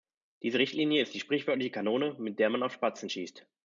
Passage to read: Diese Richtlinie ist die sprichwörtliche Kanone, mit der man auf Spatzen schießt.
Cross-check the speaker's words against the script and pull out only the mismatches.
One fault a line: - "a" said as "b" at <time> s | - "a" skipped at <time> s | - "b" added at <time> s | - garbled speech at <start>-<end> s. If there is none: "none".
none